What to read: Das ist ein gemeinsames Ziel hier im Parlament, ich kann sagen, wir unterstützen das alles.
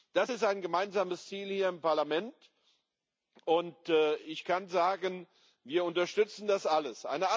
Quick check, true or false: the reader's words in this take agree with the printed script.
false